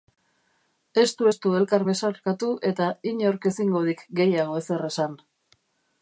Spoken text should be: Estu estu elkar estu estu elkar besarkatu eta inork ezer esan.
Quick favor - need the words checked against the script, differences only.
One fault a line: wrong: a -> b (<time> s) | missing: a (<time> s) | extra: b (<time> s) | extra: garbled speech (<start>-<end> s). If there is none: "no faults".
wrong: estu estu elkar besarkatu eta inork -> besarkatu eta inork ezingo dik gehiago (1.9 s)